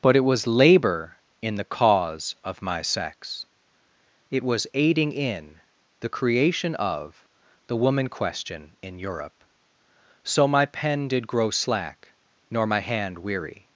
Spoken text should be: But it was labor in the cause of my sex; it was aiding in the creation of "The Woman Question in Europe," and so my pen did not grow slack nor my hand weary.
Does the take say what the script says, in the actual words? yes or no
no